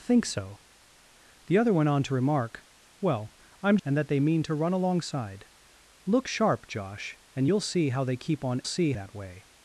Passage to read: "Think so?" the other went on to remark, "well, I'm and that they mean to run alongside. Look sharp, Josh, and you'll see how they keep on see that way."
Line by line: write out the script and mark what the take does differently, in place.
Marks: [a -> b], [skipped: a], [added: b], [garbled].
"Think so?" the other went on to remark, "well, I'm and that they mean to run alongside. Look sharp, Josh, and you'll see how they keep on see that way."